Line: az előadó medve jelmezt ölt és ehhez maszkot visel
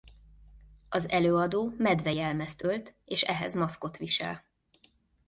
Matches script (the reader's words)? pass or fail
pass